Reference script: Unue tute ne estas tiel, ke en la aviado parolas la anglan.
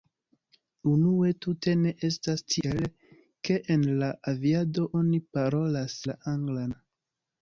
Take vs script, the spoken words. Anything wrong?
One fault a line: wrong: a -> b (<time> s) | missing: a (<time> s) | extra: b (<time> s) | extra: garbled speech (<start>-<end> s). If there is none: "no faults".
extra: oni (5.0 s)